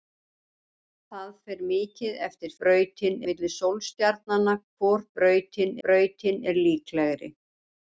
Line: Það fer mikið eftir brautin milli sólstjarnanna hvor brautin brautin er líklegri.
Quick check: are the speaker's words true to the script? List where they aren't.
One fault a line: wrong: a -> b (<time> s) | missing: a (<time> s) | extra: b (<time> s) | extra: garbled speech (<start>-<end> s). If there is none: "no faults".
no faults